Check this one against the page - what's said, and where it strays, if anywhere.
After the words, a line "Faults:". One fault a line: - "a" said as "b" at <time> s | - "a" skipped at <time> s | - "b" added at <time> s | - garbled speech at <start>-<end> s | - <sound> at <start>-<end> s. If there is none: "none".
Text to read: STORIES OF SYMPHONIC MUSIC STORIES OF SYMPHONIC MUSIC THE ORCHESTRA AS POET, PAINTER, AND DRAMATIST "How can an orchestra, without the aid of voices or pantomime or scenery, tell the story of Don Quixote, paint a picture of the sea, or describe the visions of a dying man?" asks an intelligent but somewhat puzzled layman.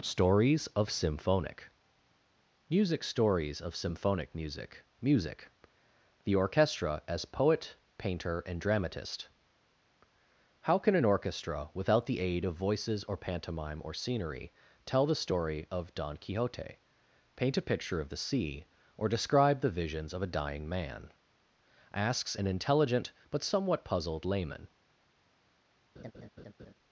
STORIES OF SYMPHONIC MUSIC STORIES OF SYMPHONIC MUSIC music THE ORCHESTRA AS POET, PAINTER, AND DRAMATIST "How can an orchestra, without the aid of voices or pantomime or scenery, tell the story of Don Quixote, paint a picture of the sea, or describe the visions of a dying man?" asks an intelligent but somewhat puzzled layman.
Faults:
- "music" added at 5.0 s
- laugh at 26.0-26.7 s